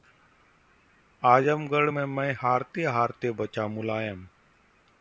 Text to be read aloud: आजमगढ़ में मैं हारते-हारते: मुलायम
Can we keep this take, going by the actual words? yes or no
no